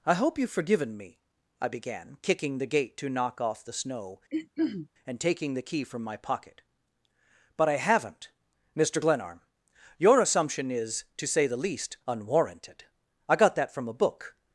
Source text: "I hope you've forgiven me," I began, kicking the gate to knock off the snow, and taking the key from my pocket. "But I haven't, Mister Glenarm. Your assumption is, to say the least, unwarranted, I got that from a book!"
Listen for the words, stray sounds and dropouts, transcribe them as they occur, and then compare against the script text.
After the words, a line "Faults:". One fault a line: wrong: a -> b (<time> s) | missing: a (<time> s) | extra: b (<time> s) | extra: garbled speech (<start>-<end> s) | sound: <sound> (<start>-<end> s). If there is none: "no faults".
"I hope you've forgiven me," I began, kicking the gate to knock off the snow, and taking the key from my pocket. "But I haven't, Mister Glenarm. Your assumption is, to say the least, unwarranted, I got that from a book!"
Faults:
sound: throat clearing (4.3-4.9 s)